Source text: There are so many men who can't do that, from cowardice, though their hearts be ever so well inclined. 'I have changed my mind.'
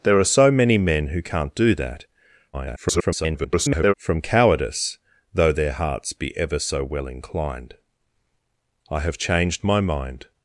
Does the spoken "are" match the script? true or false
true